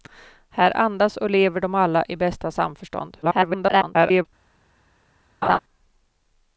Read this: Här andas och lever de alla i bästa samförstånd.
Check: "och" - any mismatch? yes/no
no